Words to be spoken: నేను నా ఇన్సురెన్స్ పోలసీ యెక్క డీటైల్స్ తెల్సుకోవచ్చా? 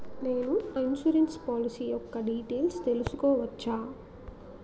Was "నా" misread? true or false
true